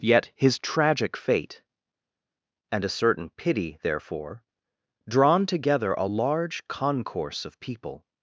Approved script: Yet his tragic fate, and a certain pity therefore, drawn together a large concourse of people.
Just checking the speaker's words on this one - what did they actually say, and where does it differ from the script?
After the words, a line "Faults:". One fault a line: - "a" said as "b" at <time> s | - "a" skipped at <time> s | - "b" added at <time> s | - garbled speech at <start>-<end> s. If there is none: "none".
Yet his tragic fate, and a certain pity therefore, drawn together a large concourse of people.
Faults:
none